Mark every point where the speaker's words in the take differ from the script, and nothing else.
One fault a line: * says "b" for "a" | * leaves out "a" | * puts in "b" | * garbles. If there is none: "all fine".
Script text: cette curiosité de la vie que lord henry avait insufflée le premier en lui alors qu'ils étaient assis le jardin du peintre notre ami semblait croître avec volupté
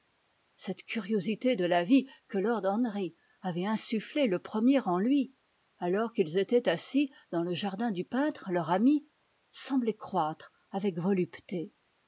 * puts in "dans"
* says "leur" for "notre"